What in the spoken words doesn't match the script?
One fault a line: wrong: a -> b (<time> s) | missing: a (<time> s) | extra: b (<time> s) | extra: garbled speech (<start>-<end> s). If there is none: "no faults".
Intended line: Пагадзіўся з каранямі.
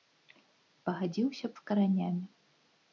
no faults